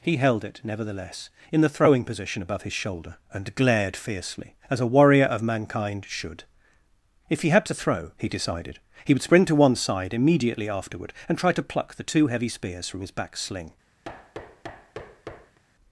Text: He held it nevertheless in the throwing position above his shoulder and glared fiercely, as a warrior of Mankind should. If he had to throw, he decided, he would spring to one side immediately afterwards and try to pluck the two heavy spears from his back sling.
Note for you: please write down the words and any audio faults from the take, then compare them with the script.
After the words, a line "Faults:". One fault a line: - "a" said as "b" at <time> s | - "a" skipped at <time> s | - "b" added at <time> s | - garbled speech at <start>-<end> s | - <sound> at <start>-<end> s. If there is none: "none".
He held it nevertheless in the throwing position above his shoulder and glared fiercely, as a warrior of Mankind should. If he had to throw, he decided, he would spring to one side immediately afterward and try to pluck the two heavy spears from his back sling.
Faults:
- "afterwards" said as "afterward" at 10.7 s
- thud at 14.0-15.6 s